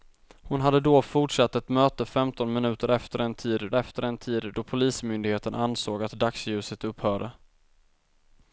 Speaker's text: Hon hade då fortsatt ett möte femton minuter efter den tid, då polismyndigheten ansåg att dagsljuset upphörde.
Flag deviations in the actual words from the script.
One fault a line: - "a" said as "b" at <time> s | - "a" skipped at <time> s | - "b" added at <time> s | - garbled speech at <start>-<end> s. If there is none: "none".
- "efter den tid" added at 3.7 s